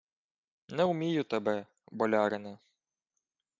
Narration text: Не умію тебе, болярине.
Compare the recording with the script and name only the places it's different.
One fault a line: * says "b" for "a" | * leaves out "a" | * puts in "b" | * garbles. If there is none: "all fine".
all fine